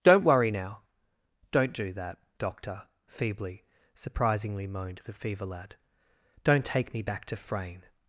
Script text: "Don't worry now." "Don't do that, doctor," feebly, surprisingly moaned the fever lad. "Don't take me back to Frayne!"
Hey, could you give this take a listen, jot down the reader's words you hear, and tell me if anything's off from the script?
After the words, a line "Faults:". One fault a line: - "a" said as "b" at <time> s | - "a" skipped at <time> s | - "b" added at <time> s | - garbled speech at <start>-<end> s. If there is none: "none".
"Don't worry now." "Don't do that, doctor," feebly, surprisingly moaned the fever lad. "Don't take me back to Frayne!"
Faults:
none